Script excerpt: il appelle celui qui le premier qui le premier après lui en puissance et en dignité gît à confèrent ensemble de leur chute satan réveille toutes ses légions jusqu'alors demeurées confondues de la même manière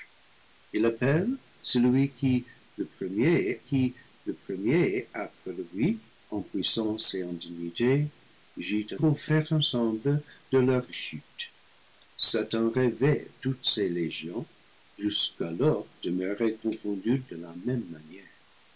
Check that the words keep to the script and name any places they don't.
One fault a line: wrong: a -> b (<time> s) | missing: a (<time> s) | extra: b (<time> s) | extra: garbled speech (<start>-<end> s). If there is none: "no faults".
no faults